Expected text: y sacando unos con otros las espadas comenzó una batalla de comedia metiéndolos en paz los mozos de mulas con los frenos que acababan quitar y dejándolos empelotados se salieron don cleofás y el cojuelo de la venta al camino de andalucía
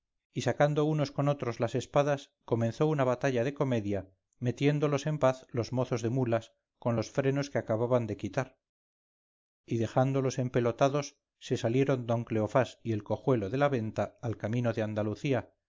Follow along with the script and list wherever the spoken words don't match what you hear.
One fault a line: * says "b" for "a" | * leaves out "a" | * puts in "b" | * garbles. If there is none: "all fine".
* puts in "de"